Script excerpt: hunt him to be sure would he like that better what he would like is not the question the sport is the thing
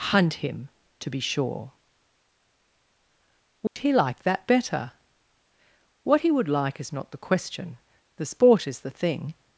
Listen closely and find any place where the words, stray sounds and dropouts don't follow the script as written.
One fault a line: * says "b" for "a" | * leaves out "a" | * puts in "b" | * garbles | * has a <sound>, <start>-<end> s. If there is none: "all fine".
* has a dropout, 3.7-3.8 s